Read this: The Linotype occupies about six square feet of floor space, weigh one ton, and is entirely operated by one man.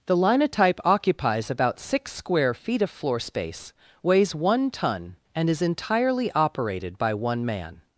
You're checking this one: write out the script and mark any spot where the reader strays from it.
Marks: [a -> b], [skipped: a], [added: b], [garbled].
The Linotype occupies about six square feet of floor space, [weigh -> weighs] one ton, and is entirely operated by one man.